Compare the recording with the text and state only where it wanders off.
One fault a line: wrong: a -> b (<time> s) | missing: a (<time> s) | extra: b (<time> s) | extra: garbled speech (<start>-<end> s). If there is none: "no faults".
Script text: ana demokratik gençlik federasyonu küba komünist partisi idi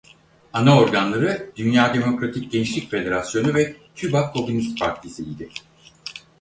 extra: organları dünya (0.8 s)
extra: ve (3.5 s)